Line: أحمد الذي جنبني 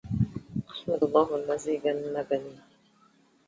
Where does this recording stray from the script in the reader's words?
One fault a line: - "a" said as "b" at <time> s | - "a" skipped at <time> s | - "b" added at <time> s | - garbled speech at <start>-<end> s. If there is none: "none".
- "الله" added at 1.0 s